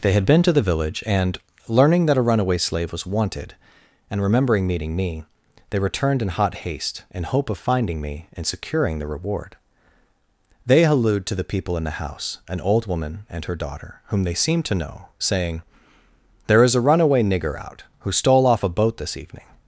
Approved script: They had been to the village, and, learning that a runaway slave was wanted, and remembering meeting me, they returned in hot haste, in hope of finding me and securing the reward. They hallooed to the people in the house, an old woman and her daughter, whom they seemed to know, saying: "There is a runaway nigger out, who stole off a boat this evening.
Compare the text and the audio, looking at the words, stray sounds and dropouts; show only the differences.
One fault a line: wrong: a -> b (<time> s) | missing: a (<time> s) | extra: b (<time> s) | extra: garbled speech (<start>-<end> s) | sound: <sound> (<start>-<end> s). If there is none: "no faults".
no faults